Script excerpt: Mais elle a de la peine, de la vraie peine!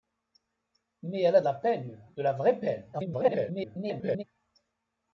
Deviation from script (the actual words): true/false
true